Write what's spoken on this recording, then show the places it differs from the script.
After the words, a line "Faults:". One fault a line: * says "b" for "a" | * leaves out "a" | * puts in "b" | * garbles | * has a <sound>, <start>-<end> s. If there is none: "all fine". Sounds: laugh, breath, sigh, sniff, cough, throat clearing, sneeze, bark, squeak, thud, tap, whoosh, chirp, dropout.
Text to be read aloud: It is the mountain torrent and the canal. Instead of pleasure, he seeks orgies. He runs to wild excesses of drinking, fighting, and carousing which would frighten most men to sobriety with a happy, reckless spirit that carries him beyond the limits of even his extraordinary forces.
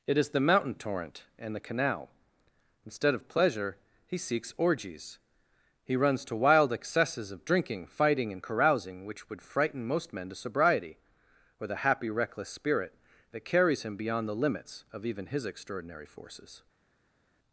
It is the mountain torrent and the canal. Instead of pleasure, he seeks orgies. He runs to wild excesses of drinking, fighting, and carousing which would frighten most men to sobriety or the happy, reckless spirit that carries him beyond the limits of even his extraordinary forces.
Faults:
* says "or the" for "with a"